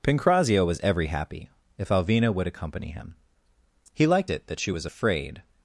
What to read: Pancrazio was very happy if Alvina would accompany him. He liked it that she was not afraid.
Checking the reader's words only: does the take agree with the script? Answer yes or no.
no